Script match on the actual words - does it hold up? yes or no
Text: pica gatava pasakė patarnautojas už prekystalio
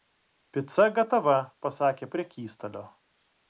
no